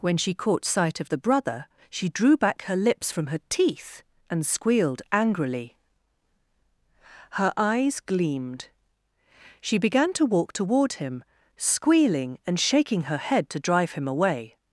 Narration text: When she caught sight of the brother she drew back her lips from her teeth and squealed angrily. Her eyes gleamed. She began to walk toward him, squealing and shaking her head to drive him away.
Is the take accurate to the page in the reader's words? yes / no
yes